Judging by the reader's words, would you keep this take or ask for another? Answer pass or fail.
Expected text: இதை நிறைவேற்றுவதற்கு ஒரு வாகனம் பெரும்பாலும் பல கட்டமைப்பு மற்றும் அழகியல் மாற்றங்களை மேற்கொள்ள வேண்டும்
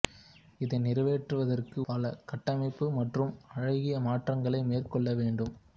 fail